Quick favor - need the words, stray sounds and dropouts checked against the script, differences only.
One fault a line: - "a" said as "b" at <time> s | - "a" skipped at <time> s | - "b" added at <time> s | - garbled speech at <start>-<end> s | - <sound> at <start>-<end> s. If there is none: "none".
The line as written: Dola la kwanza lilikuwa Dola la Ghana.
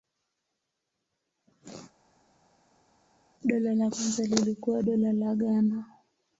none